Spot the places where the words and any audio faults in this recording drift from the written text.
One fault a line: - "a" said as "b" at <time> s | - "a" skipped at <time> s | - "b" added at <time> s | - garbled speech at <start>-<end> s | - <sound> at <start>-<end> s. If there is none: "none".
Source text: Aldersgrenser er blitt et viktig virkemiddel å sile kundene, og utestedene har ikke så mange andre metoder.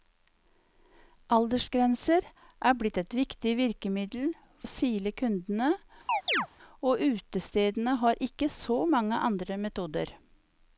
- chirp at 6.1-6.5 s